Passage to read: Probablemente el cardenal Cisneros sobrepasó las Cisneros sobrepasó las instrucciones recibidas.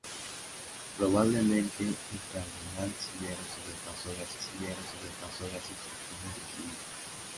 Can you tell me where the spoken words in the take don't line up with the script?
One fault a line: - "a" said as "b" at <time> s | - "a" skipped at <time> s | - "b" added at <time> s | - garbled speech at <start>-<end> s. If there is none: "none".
none